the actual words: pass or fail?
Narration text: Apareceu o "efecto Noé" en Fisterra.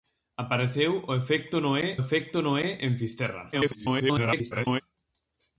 fail